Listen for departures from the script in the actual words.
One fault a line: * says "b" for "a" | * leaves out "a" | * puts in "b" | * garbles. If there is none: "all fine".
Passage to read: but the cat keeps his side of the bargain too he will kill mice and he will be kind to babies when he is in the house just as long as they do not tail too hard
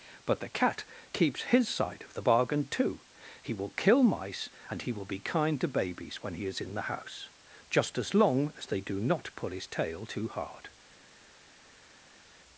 * puts in "pull his"